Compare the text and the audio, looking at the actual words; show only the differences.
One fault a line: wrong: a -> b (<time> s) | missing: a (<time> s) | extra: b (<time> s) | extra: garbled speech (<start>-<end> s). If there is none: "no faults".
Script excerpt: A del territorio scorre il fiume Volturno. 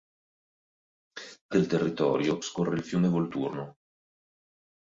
no faults